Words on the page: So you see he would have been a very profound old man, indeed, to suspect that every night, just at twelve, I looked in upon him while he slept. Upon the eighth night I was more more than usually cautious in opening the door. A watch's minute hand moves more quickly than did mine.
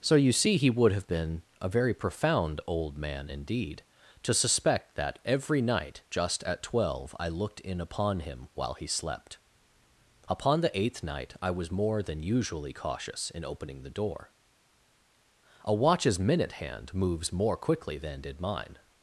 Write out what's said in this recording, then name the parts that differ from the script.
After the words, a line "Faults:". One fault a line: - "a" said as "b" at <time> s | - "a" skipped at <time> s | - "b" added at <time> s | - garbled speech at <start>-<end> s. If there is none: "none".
So you see he would have been a very profound old man, indeed, to suspect that every night, just at twelve, I looked in upon him while he slept. Upon the eighth night I was more than usually cautious in opening the door. A watch's minute hand moves more quickly than did mine.
Faults:
- "more" skipped at 12.0 s